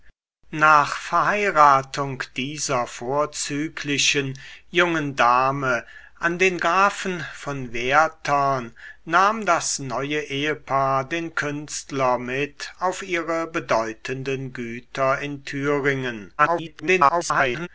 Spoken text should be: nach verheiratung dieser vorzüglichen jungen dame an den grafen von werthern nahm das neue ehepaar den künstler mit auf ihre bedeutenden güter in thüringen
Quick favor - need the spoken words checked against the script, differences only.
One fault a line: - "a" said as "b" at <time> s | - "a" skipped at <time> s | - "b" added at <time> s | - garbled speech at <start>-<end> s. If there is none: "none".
- garbled speech at 16.4-17.7 s